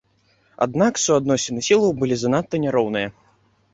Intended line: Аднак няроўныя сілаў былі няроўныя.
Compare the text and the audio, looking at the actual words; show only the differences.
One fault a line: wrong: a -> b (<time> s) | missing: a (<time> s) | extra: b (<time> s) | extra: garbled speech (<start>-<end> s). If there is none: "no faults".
wrong: няроўныя -> суадносіны (1.0 s)
extra: занадта (2.2 s)